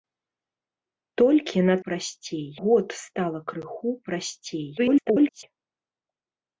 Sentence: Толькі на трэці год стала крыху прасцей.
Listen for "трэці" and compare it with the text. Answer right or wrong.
wrong